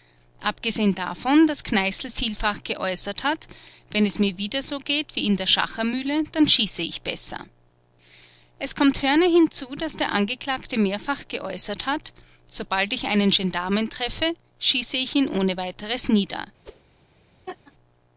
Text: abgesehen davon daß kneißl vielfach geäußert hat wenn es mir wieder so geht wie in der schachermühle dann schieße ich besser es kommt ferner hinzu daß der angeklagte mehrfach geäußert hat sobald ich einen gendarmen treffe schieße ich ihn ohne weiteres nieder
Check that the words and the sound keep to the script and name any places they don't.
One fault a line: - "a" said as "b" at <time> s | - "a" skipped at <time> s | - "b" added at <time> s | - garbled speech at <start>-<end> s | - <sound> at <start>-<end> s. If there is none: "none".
- whoosh at 16.6-16.8 s
- laugh at 17.5-17.7 s